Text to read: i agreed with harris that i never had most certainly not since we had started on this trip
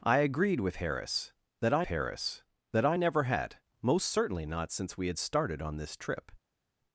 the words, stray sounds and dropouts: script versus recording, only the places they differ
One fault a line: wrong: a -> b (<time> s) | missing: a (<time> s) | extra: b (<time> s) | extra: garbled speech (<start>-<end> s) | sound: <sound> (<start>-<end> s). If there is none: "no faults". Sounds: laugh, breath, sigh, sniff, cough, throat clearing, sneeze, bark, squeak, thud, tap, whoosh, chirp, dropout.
extra: harris that i (1.9 s)